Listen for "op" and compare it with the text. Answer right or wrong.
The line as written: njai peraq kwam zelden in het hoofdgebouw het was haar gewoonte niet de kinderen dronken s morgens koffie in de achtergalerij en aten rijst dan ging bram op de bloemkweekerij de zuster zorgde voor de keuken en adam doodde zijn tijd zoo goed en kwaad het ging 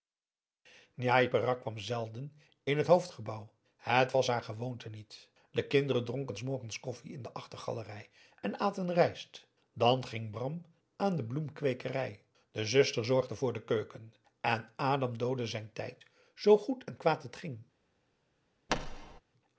wrong